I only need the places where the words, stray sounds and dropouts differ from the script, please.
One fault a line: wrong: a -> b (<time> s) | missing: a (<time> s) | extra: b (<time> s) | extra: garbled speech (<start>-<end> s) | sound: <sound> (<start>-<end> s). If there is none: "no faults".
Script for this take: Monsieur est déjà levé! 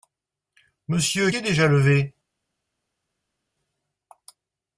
no faults